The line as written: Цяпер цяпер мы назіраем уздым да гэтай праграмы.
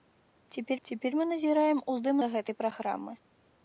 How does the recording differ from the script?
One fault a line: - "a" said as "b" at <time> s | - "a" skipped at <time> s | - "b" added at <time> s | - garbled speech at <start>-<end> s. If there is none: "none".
none